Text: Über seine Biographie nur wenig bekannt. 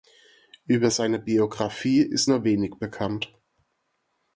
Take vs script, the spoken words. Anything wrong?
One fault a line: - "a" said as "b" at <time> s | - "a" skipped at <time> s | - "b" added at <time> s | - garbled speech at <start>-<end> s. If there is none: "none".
- "ist" added at 2.0 s